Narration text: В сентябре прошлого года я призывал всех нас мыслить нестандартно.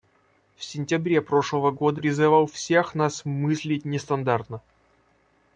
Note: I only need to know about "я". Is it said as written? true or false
false